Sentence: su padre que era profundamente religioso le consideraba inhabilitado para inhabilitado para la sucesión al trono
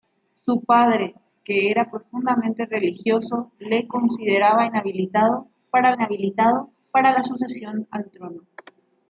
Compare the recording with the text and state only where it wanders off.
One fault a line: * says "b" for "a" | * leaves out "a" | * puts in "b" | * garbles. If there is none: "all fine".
all fine